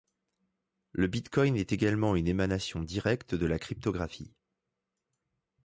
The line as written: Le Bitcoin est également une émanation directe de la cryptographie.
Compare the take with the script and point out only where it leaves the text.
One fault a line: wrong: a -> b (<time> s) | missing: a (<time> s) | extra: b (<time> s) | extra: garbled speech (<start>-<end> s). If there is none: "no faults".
no faults